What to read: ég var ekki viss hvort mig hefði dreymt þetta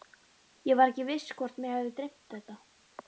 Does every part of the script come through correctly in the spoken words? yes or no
yes